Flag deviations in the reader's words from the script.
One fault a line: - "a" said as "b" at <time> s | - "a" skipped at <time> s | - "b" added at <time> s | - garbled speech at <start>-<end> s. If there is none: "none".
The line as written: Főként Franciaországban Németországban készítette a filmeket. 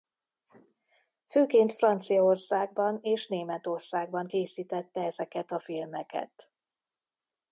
- "és" added at 3.0 s
- "ezeket" added at 5.0 s